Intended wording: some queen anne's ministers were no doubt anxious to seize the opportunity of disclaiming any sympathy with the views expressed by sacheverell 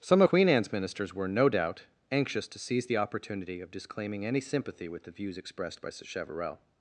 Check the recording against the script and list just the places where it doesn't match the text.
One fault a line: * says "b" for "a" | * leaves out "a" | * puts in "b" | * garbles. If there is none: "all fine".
all fine